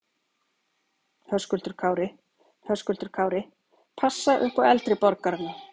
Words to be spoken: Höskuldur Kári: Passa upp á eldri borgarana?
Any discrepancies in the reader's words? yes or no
yes